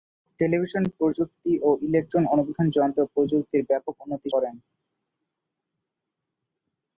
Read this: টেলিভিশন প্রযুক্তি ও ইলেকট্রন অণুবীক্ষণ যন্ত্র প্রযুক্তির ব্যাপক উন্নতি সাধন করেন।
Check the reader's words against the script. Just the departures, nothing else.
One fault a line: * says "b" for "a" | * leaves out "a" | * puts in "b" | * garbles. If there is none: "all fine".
* leaves out "সাধন"